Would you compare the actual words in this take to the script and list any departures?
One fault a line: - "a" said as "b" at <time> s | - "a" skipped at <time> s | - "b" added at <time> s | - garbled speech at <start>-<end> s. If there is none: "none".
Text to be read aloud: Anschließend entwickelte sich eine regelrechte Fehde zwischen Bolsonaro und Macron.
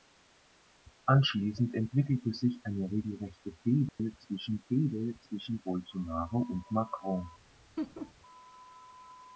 - "Fehde zwischen" added at 4.7 s